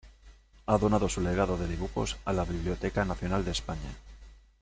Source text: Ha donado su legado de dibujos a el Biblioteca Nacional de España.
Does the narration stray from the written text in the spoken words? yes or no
yes